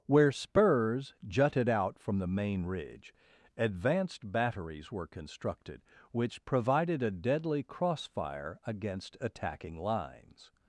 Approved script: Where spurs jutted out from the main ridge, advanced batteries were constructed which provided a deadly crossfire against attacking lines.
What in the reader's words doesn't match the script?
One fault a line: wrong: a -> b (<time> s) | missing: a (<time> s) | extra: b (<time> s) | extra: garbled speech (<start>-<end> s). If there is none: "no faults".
no faults